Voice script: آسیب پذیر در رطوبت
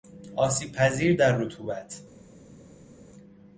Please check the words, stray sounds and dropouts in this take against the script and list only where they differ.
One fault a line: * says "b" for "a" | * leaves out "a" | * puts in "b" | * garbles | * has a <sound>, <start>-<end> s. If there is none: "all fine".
all fine